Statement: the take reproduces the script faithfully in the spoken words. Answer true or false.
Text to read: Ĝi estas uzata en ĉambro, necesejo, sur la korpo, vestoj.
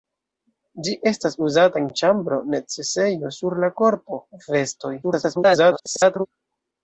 false